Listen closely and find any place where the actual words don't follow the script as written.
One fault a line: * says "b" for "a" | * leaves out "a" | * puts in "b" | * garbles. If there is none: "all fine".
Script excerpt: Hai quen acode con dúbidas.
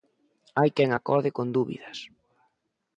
all fine